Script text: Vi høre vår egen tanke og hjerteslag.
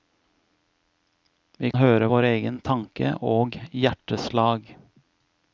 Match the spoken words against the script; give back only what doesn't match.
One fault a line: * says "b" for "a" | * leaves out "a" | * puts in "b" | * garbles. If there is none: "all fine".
all fine